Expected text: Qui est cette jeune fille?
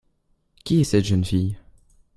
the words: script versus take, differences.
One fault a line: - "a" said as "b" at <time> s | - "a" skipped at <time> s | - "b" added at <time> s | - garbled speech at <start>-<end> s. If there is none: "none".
none